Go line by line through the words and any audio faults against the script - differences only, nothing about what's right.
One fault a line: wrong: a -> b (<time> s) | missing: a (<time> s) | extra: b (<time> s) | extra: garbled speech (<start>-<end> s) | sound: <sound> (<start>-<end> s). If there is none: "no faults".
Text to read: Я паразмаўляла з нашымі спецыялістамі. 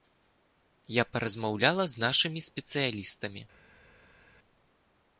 no faults